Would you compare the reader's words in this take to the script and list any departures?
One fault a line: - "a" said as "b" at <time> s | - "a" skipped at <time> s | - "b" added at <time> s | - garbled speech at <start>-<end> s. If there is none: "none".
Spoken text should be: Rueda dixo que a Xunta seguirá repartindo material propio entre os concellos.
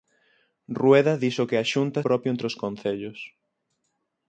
- "seguirá repartindo material" skipped at 2.0 s